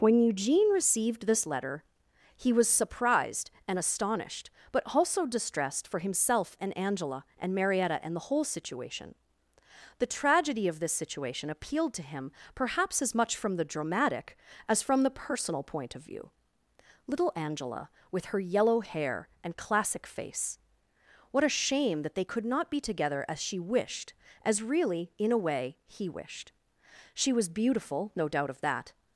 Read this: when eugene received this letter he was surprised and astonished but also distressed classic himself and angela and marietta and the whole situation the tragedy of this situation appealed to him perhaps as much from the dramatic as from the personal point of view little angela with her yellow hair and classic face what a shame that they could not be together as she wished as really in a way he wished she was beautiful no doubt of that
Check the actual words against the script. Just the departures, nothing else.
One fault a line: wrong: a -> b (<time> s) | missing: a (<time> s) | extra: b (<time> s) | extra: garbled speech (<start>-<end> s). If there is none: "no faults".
wrong: classic -> for (5.9 s)